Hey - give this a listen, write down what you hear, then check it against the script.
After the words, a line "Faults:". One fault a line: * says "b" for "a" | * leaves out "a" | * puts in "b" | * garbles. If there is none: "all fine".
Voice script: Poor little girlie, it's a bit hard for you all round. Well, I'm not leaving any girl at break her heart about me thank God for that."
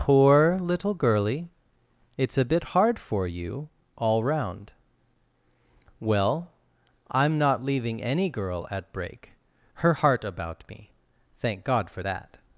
Poor little girlie, it's a bit hard for you all round. Well, I'm not leaving any girl at break her heart about me thank God for that."
Faults:
all fine